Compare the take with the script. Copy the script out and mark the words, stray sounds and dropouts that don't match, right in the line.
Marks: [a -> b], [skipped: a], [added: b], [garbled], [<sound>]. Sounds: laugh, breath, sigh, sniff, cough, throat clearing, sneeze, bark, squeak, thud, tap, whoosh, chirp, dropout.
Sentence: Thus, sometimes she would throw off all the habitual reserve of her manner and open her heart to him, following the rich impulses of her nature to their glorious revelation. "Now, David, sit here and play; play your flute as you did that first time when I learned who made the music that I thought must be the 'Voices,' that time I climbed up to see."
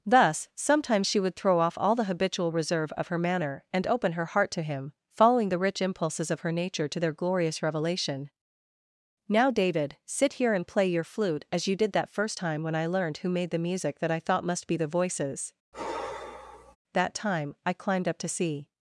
Thus, sometimes she would throw off all the habitual reserve of her manner and open her heart to him, following the rich impulses of her nature to their glorious revelation. "Now, David, sit here and play; [skipped: play] your flute as you did that first time when I learned who made the music that I thought must be the 'Voices,' [sigh] that time I climbed up to see."